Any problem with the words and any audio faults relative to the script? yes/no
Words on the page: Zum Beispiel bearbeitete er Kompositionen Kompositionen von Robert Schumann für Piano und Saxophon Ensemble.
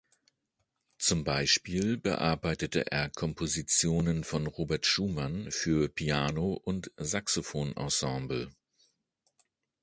yes